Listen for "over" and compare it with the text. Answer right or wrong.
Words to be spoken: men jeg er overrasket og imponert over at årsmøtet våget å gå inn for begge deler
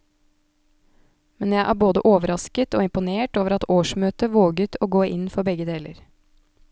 right